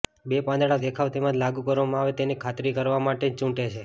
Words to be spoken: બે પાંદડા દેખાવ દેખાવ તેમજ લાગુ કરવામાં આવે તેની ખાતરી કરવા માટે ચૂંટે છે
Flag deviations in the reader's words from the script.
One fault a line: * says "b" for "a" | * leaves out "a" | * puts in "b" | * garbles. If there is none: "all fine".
* leaves out "દેખાવ"